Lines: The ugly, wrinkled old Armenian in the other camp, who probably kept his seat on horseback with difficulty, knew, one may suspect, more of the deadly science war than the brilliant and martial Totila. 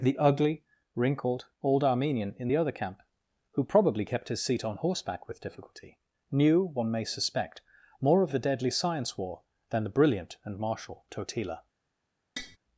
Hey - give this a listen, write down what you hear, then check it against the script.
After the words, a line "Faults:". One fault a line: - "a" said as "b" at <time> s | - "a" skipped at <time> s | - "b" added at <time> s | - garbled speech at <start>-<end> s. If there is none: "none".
The ugly, wrinkled old Armenian in the other camp, who probably kept his seat on horseback with difficulty, knew, one may suspect, more of the deadly science war than the brilliant and martial Totila.
Faults:
none